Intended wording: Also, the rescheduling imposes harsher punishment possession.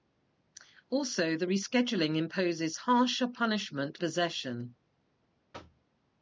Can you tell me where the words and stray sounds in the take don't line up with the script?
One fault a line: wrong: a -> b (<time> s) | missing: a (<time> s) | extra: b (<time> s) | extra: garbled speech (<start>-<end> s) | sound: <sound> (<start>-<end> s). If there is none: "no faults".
sound: thud (5.5-5.9 s)